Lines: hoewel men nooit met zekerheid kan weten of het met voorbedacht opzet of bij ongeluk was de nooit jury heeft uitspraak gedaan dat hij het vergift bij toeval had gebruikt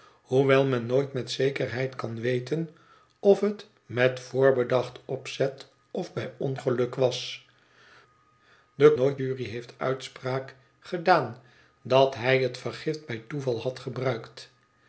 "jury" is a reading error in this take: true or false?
false